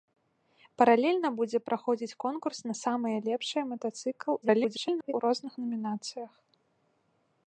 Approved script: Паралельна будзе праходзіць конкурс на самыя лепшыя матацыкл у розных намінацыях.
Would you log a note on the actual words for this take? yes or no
yes